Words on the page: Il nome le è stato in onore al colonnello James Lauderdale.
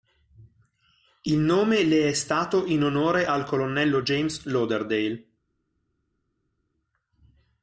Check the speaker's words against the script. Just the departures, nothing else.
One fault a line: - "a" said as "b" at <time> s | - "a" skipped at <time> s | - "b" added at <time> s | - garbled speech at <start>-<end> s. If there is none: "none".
none